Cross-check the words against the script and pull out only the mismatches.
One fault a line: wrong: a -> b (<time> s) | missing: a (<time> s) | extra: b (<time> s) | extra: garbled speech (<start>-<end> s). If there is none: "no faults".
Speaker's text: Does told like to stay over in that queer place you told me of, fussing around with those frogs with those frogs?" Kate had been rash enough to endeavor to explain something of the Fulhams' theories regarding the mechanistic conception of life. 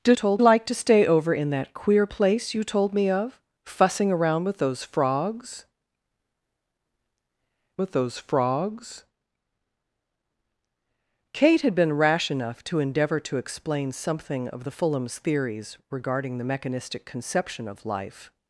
no faults